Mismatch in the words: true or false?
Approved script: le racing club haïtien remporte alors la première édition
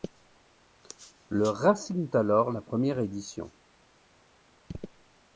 true